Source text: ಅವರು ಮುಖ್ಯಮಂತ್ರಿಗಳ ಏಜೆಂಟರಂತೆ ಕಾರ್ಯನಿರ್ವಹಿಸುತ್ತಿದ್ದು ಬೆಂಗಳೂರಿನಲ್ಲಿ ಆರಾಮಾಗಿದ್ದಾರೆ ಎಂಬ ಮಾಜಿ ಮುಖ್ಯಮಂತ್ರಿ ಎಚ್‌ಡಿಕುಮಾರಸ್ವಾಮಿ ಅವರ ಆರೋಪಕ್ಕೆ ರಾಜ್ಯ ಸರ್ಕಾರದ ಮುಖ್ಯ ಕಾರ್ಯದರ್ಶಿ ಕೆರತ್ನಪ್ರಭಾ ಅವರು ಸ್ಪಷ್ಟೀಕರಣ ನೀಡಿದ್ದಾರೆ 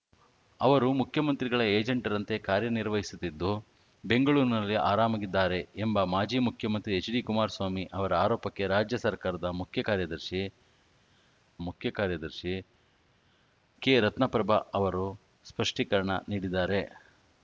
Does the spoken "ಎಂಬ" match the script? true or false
true